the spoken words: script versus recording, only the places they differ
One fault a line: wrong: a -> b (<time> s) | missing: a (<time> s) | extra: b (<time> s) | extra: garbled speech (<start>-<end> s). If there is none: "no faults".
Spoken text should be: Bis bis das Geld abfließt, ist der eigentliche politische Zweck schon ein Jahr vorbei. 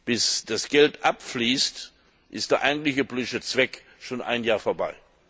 missing: bis (0.5 s)